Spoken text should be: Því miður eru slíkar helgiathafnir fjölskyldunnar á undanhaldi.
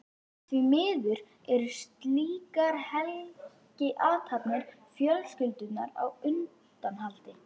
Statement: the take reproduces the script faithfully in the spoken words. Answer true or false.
true